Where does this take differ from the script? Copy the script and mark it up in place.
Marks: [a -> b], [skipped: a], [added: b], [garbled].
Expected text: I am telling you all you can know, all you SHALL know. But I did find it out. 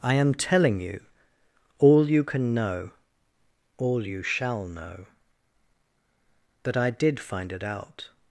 I am telling you all you can know, all you SHALL know. [But -> That] I did find it out.